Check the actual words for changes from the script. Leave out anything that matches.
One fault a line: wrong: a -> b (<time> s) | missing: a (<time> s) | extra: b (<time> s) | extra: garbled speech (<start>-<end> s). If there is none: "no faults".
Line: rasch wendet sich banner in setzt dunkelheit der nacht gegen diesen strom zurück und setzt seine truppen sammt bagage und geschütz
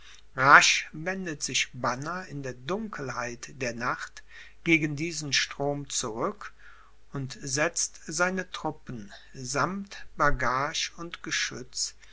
wrong: setzt -> der (2.4 s)